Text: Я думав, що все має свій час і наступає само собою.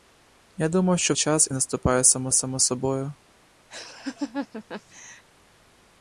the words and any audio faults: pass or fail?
fail